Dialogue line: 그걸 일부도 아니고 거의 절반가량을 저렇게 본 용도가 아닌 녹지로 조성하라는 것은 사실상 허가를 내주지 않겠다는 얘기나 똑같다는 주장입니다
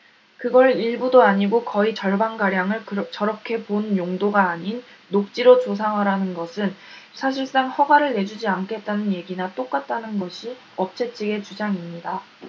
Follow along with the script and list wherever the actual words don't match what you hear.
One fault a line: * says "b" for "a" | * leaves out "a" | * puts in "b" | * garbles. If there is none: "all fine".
* puts in "것이 업체 측의"